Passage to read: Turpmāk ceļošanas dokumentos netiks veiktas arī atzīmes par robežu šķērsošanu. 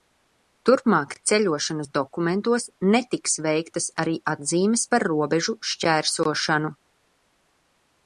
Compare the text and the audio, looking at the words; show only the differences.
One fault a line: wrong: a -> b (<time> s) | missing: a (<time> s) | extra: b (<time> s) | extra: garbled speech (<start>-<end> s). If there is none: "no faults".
no faults